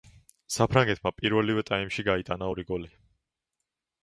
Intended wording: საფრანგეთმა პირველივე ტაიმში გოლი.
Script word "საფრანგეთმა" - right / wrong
right